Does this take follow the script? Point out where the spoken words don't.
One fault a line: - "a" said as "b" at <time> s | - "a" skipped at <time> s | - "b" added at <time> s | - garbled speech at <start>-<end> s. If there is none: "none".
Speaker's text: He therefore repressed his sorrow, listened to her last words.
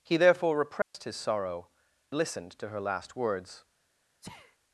none